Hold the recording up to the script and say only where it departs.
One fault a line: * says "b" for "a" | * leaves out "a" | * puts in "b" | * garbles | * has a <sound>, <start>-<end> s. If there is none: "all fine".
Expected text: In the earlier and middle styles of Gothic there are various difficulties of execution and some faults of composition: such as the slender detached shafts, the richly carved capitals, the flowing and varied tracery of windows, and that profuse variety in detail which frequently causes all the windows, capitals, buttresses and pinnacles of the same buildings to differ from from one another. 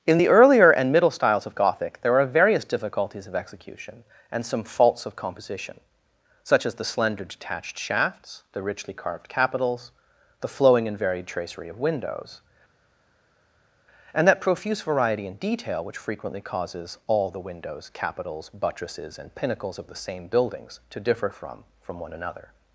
all fine